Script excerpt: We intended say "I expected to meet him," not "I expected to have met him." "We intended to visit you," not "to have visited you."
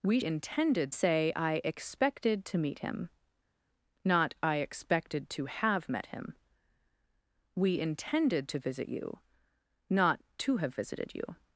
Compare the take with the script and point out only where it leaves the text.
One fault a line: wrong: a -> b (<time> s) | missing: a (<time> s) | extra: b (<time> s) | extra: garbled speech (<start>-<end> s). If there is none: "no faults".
no faults